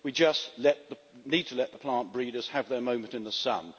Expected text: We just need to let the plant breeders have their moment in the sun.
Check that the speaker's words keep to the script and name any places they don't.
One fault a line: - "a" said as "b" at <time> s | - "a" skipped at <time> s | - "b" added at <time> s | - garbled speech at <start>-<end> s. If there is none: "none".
none